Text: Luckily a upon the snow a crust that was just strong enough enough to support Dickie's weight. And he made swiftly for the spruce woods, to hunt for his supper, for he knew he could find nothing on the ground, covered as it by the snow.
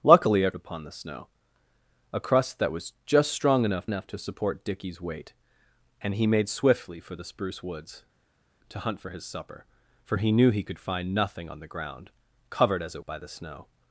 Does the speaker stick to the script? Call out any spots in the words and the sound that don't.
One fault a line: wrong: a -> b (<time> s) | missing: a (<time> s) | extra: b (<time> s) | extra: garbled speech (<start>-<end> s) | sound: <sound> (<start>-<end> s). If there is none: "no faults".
no faults